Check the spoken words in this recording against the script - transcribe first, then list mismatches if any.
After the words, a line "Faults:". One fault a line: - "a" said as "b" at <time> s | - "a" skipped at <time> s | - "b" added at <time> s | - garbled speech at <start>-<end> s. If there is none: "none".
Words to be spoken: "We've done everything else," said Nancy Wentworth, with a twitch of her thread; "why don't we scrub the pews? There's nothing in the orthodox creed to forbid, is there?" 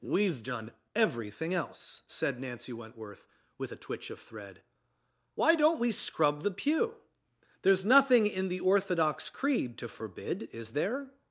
"We've done everything else," said Nancy Wentworth, with a twitch of thread; "why don't we scrub the pew? There's nothing in the orthodox creed to forbid, is there?"
Faults:
- "her" skipped at 4.2 s
- "pews" said as "pew" at 6.5 s